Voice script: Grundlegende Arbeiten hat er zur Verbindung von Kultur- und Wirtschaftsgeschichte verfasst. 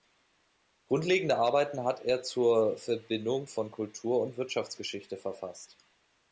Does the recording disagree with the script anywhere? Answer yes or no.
no